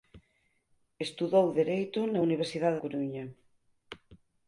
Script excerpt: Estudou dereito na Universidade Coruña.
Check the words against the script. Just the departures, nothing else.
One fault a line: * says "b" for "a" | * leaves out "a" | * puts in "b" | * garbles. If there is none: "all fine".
all fine